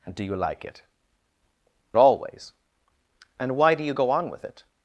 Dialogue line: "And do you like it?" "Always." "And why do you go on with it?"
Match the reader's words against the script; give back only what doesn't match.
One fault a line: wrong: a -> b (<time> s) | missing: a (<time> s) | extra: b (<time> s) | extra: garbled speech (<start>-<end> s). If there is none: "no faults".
no faults